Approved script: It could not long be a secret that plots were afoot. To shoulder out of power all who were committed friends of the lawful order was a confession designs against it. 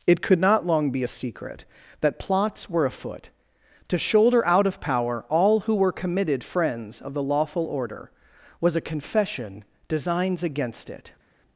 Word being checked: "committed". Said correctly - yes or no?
yes